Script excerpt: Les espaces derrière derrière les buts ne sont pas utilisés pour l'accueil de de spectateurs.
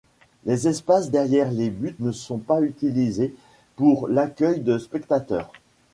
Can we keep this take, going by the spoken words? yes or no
no